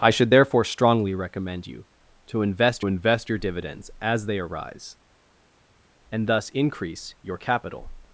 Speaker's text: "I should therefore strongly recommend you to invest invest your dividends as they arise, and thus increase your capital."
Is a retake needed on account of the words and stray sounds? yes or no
no